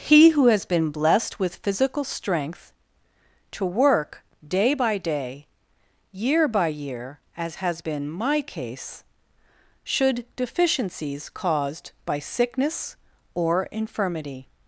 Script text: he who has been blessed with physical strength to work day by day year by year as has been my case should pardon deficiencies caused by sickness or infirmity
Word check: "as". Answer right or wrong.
right